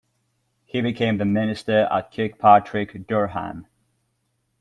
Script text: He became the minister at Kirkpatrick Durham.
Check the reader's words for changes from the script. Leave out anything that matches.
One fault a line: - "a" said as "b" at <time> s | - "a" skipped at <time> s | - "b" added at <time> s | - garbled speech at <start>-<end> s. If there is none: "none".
none